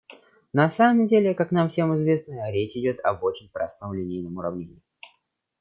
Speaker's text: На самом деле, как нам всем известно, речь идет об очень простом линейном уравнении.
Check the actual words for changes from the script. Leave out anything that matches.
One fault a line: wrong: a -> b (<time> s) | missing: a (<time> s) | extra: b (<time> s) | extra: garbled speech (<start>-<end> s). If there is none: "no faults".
no faults